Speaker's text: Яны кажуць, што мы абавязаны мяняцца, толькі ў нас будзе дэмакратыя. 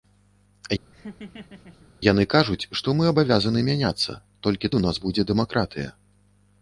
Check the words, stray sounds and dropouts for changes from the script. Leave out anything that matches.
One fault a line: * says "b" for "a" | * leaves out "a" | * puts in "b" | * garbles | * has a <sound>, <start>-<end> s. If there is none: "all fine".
* has a laugh, 0.9-1.9 s